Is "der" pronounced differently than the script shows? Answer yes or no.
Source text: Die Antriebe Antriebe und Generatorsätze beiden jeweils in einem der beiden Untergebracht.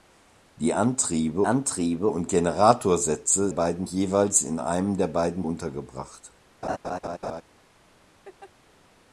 no